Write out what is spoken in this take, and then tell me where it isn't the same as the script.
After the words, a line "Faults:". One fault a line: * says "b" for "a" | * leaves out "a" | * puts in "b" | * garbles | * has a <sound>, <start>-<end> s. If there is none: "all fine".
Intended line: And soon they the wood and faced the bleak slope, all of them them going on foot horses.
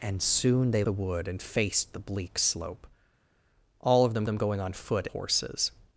And soon they the wood and faced the bleak slope, all of them them going on foot horses.
Faults:
all fine